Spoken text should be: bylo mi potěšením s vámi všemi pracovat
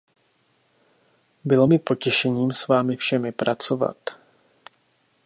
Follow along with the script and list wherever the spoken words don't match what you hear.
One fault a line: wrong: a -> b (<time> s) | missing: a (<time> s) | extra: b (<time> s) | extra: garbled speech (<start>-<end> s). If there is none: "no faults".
no faults